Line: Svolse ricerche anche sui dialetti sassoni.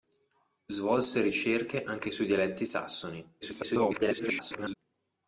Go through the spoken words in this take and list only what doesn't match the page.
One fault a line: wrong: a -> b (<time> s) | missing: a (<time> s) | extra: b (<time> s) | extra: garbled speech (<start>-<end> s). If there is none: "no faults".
extra: garbled speech (3.4-4.8 s)